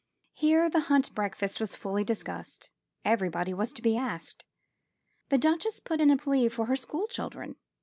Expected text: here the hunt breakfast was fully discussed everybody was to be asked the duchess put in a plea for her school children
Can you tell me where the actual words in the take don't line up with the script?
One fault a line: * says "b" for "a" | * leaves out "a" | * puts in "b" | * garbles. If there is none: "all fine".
all fine